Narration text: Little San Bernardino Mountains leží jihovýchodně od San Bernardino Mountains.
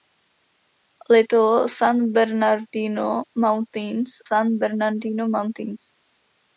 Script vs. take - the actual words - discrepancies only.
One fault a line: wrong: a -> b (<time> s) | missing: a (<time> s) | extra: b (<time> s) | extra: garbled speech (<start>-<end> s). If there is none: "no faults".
missing: leží jihovýchodně od (4.1 s)